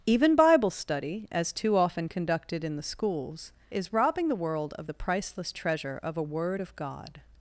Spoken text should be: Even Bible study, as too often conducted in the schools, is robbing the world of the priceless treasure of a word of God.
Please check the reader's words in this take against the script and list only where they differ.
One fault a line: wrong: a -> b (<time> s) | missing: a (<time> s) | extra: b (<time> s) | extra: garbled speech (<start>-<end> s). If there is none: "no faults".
no faults